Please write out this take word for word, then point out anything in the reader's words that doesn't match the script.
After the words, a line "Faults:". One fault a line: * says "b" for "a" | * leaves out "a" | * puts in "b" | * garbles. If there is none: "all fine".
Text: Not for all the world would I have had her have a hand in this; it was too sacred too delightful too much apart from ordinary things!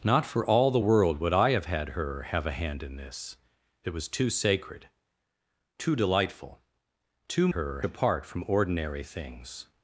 Not for all the world would I have had her have a hand in this; it was too sacred too delightful too her apart from ordinary things!
Faults:
* says "her" for "much"